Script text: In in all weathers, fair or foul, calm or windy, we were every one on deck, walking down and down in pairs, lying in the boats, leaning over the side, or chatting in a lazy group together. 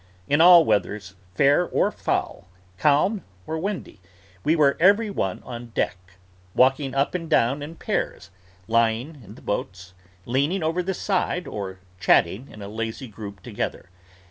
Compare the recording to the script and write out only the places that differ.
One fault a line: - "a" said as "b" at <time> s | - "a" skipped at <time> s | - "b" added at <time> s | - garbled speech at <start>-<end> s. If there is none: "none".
- "in" skipped at 0.4 s
- "down" said as "up" at 6.9 s